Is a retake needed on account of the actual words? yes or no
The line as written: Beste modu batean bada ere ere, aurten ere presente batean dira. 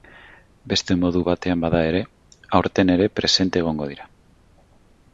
yes